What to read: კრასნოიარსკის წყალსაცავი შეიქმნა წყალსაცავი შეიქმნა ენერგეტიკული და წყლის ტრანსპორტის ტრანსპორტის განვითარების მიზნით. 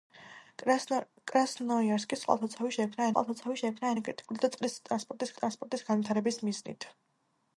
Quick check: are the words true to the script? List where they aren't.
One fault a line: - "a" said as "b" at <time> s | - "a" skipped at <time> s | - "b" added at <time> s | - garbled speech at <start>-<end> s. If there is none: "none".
none